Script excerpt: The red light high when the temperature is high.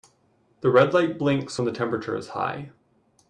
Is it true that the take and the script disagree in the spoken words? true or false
true